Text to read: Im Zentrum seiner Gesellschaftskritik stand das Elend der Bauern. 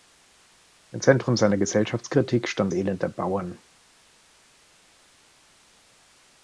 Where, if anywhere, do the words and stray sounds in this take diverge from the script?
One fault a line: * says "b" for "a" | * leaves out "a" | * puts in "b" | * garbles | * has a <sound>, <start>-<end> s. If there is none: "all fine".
* leaves out "das"